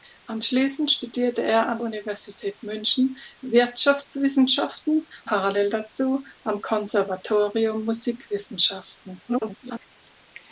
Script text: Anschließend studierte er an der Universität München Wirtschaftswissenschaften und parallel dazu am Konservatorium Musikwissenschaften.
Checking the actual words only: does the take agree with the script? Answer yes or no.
no